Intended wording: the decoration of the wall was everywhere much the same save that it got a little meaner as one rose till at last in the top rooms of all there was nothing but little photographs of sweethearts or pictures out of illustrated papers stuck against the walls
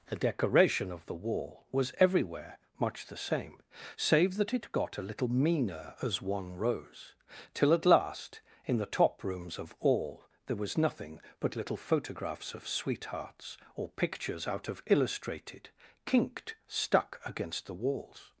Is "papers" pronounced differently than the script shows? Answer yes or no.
yes